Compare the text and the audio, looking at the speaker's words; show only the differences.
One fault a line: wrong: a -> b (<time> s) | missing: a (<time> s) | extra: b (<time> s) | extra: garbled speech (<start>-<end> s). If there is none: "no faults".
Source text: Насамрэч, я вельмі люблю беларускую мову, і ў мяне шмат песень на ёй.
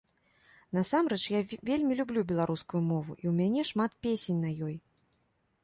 no faults